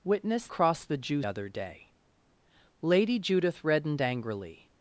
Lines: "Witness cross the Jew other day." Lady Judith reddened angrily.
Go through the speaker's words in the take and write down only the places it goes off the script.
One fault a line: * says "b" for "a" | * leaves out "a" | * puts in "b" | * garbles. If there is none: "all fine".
all fine